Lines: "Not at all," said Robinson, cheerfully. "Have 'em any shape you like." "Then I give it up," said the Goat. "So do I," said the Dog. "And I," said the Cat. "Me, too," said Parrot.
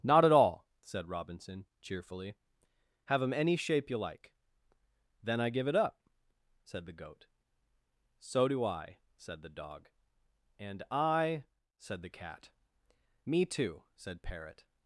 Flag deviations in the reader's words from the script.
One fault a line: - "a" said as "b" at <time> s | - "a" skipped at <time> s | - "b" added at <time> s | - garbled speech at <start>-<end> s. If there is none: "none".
none